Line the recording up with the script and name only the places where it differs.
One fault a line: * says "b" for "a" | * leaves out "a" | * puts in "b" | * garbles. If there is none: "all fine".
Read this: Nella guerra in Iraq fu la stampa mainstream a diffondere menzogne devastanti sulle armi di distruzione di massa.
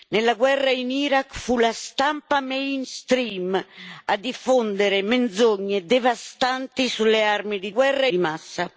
* says "guerra" for "distruzione"